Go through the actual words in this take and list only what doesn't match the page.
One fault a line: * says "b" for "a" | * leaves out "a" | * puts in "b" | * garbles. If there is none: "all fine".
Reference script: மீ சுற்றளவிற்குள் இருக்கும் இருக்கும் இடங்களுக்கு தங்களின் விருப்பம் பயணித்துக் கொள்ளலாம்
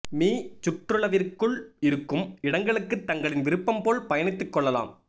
* leaves out "இருக்கும்"
* puts in "போல்"